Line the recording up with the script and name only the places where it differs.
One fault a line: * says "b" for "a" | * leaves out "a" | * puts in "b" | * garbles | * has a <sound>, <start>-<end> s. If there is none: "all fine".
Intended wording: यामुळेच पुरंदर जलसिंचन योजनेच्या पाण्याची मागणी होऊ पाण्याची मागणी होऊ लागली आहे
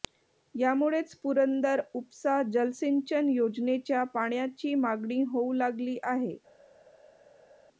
* puts in "उपसा"
* leaves out "पाण्याची मागणी होऊ"